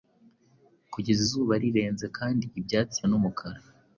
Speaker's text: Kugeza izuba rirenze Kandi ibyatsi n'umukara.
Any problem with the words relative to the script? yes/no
no